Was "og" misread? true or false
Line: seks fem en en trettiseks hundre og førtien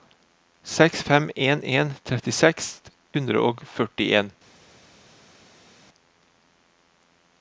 false